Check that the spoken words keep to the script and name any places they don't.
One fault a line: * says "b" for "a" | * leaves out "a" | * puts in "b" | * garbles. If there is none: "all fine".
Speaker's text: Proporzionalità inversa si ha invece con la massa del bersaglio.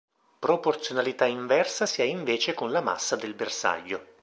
all fine